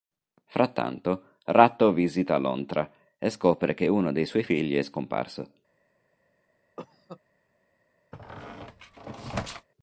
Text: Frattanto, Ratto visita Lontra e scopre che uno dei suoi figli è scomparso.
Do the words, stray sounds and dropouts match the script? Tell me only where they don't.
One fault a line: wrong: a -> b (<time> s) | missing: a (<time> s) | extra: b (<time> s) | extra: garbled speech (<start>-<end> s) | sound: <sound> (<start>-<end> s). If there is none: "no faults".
sound: cough (6.8-7.2 s)
sound: squeak (8.1-9.7 s)